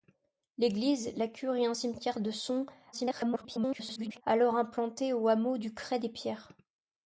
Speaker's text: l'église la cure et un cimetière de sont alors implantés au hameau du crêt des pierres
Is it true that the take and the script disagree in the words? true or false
true